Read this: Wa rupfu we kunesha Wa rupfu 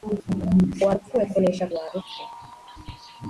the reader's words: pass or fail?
pass